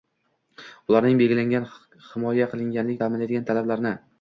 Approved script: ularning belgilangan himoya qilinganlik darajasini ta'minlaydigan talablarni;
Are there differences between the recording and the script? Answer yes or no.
yes